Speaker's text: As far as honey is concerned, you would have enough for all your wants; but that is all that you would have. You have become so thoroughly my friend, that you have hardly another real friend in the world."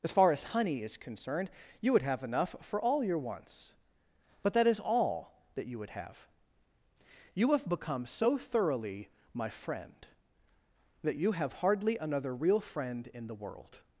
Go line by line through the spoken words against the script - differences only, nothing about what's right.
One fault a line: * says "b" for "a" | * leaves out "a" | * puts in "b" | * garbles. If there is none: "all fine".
all fine